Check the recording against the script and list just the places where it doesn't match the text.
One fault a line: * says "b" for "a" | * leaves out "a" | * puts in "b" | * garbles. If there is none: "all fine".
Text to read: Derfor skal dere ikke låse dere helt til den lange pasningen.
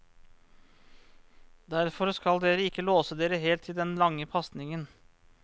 all fine